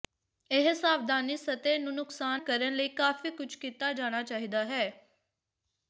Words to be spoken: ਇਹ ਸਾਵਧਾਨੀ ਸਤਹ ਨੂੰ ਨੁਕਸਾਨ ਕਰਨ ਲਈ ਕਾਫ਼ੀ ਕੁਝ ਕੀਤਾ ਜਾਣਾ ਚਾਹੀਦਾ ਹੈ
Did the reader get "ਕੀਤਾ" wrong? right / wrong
right